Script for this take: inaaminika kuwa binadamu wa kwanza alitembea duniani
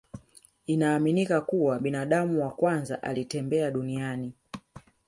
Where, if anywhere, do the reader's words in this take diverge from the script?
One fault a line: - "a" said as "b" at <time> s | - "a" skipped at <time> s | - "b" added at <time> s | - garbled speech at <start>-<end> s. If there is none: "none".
none